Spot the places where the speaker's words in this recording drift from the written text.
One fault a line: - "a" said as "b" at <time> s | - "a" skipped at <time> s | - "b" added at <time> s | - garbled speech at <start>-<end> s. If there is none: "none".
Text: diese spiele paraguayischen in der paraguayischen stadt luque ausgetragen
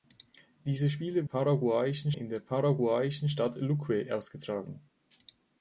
none